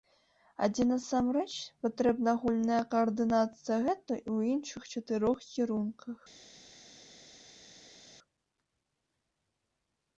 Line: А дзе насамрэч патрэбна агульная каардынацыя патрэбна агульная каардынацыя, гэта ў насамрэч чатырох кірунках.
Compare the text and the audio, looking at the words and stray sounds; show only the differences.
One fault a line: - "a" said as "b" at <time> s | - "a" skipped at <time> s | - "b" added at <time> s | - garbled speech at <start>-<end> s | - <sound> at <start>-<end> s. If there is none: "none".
- "патрэбна агульная каардынацыя" skipped at 3.8 s
- "насамрэч" said as "іншых" at 4.5 s